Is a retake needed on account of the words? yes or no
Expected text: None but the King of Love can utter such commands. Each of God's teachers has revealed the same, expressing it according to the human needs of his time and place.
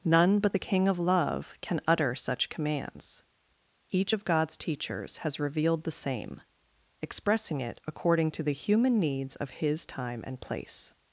no